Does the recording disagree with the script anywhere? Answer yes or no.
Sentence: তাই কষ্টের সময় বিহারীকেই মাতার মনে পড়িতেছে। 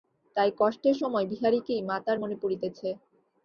no